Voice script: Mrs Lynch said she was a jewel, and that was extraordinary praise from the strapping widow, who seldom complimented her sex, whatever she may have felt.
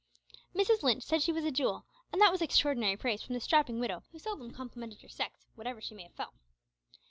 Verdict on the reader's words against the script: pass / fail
pass